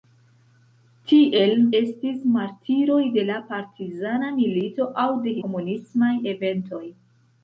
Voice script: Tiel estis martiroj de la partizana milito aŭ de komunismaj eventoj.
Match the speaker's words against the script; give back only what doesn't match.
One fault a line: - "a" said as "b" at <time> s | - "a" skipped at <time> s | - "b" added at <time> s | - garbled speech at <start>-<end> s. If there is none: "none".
none